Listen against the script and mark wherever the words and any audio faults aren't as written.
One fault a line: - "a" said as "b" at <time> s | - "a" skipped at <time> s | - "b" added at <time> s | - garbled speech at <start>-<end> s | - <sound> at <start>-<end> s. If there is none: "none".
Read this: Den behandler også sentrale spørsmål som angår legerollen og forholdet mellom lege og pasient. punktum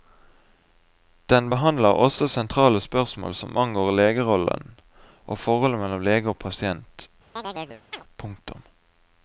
- chirp at 7.4-8.0 s